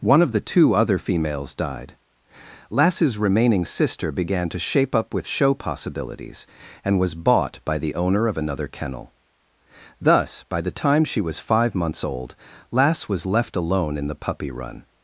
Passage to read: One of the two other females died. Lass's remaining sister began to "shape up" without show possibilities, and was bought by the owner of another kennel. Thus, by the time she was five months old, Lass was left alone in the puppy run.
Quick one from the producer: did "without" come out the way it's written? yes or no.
no